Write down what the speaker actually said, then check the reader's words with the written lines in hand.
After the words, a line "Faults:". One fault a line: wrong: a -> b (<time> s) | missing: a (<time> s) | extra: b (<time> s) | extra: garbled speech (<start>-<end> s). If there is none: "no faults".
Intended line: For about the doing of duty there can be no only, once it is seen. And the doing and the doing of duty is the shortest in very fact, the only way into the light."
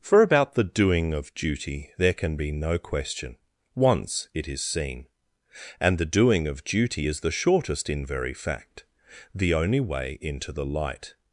For about the doing of duty there can be no question, once it is seen. And the doing of duty is the shortest in very fact, the only way into the light."
Faults:
wrong: only -> question (2.8 s)
missing: and the doing (6.5 s)